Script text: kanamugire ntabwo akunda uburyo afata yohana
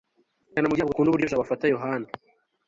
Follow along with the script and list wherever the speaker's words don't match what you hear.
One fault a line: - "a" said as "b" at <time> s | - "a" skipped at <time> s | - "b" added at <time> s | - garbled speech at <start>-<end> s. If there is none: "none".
- "jabo" added at 1.3 s